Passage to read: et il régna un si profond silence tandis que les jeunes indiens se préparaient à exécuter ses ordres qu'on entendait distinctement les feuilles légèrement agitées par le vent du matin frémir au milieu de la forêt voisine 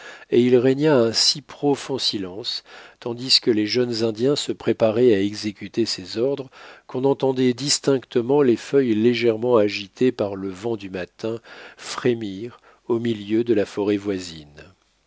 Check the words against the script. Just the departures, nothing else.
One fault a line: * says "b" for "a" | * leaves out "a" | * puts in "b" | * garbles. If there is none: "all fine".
all fine